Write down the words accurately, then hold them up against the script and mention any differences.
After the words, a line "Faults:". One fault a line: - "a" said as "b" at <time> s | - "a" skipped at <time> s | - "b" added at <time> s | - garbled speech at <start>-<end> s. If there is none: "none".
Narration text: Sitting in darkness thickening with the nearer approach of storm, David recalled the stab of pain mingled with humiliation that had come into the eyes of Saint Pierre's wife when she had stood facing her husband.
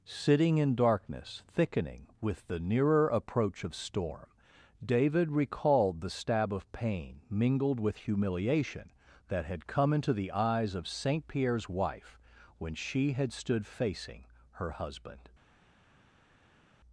Sitting in darkness thickening with the nearer approach of storm, David recalled the stab of pain mingled with humiliation that had come into the eyes of Saint Pierre's wife when she had stood facing her husband.
Faults:
none